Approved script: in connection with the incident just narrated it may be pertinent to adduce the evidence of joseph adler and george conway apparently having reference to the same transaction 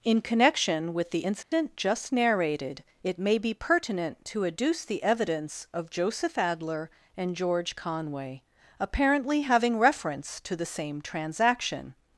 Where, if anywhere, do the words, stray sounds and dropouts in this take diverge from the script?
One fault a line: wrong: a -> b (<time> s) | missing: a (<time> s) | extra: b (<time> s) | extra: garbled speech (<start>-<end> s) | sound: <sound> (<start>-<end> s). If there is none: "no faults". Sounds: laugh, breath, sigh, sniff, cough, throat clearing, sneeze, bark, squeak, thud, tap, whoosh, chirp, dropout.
sound: dropout (1.4-1.5 s)